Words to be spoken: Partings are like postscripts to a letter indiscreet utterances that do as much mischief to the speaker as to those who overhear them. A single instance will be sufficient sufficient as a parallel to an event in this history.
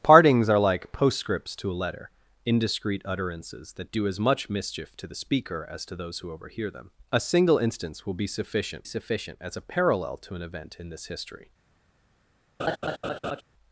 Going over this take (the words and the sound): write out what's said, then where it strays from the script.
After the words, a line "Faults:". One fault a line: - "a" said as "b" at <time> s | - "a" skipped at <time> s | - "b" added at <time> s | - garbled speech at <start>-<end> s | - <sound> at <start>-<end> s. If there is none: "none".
Partings are like postscripts to a letter indiscreet utterances that do as much mischief to the speaker as to those who overhear them. A single instance will be sufficient sufficient as a parallel to an event in this history.
Faults:
- laugh at 12.6-13.4 s